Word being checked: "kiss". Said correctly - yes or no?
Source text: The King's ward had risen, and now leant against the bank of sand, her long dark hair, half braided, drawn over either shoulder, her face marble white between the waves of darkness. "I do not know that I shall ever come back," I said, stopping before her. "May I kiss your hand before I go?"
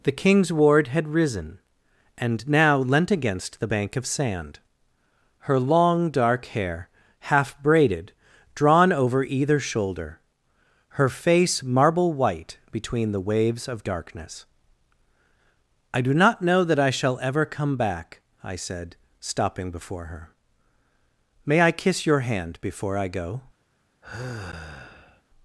yes